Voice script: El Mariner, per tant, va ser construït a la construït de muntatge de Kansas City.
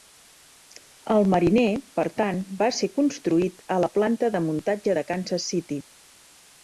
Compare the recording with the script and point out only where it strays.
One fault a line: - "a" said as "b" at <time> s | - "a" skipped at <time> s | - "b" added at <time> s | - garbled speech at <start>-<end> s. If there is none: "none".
- "construït" said as "planta" at 4.0 s